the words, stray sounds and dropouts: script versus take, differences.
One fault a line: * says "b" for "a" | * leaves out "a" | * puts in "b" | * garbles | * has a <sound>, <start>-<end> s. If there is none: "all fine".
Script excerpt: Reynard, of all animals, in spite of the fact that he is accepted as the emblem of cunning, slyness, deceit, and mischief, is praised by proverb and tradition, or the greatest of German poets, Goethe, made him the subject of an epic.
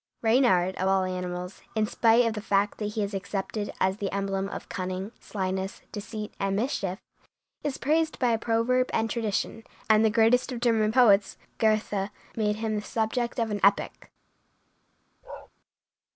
* says "and" for "or"
* has a bark, 15.2-15.5 s